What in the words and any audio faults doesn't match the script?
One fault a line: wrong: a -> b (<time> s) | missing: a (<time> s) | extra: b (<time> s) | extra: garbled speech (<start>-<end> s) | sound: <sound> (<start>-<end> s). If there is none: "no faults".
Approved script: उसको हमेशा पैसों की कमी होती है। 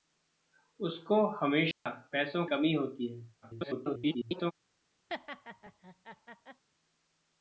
sound: dropout (1.7-1.9 s)
missing: की (2.5 s)
extra: garbled speech (3.4-4.5 s)
sound: laugh (5.1-6.6 s)